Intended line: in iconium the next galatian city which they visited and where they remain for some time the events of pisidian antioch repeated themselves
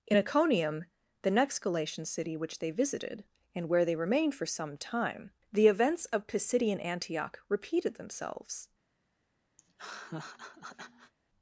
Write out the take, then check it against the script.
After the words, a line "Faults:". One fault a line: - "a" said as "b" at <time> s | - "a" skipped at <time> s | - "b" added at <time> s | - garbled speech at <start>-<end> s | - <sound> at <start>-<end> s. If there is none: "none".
in iconium the next galatian city which they visited and where they remained for some time the events of pisidian antioch repeated themselves
Faults:
- "remain" said as "remained" at 3.9 s
- laugh at 9.6-11.1 s